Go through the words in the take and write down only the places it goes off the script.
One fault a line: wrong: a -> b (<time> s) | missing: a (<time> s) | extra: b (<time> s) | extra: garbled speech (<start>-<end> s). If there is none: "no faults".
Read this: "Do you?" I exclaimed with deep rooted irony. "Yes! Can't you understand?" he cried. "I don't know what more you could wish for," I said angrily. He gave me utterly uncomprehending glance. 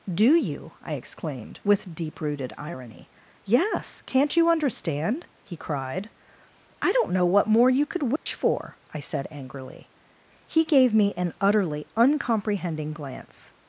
extra: an (11.2 s)